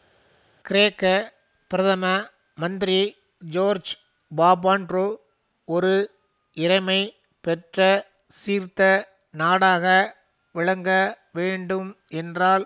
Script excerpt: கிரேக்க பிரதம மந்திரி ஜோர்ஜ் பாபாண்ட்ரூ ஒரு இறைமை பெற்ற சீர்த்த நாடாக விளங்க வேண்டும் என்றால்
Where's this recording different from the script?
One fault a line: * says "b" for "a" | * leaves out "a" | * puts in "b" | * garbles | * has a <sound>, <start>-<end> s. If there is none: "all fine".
all fine